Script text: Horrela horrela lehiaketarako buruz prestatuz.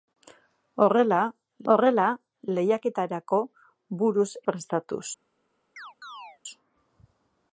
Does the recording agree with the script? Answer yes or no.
yes